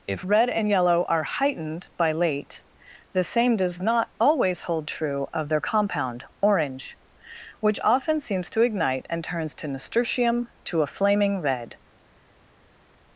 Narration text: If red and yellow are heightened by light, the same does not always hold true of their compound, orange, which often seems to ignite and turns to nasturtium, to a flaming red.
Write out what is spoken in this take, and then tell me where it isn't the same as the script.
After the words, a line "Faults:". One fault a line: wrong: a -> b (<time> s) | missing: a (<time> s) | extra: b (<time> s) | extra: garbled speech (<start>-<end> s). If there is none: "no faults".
If red and yellow are heightened by late, the same does not always hold true of their compound, orange, which often seems to ignite and turns to nasturtium, to a flaming red.
Faults:
wrong: light -> late (2.1 s)